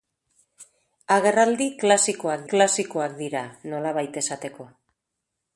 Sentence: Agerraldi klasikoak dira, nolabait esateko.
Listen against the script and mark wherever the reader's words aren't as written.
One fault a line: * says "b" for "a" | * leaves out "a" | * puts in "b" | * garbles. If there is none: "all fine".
* puts in "klasikoak"